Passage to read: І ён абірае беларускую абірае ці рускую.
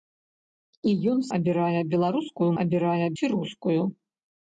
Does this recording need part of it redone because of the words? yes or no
no